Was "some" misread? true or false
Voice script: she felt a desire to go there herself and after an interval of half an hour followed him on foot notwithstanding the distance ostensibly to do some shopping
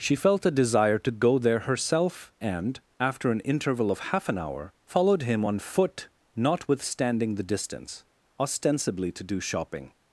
true